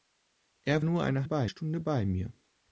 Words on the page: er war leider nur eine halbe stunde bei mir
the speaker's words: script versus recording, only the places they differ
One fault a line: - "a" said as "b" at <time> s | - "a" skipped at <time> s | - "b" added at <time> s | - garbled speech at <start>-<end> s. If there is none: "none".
- "war leider" skipped at 0.8 s
- "halbe" said as "bei" at 1.2 s